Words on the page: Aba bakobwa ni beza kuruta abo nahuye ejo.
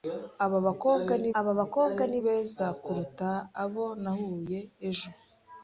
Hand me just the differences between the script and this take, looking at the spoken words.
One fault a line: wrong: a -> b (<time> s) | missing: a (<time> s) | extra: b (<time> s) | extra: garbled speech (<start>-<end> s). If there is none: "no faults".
extra: aba bakobwa ni (1.4 s)